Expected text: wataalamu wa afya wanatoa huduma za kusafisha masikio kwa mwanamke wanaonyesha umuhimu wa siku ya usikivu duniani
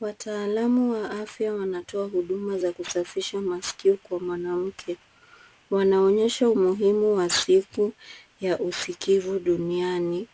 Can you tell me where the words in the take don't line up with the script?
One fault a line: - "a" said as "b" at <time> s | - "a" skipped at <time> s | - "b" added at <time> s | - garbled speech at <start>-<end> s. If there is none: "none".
none